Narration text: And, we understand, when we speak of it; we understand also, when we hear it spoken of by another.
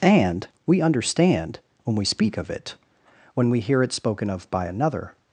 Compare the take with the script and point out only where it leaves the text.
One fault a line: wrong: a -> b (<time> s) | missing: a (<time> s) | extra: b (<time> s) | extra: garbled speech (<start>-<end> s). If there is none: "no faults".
missing: we understand also (2.7 s)